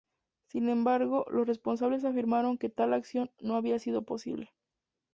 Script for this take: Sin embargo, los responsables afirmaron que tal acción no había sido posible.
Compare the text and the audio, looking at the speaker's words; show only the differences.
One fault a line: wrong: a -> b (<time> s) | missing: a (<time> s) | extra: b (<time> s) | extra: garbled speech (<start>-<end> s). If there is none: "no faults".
no faults